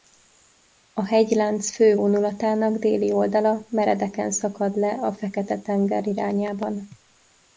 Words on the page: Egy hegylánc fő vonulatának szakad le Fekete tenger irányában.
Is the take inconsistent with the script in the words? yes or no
yes